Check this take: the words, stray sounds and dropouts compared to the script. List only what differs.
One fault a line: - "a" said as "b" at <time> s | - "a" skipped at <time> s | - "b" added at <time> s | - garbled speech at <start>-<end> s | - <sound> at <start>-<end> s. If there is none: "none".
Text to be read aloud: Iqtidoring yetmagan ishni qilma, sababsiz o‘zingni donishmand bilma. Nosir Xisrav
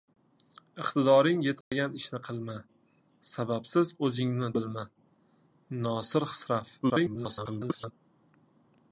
- dropout at 1.6-1.7 s
- "donishmand" skipped at 4.5 s
- garbled speech at 6.8-7.9 s